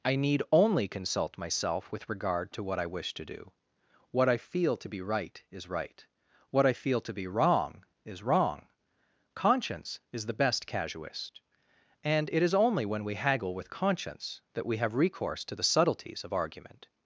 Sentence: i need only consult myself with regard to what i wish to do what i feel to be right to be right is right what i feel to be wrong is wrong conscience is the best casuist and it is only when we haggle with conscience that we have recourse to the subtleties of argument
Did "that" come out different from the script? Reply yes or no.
no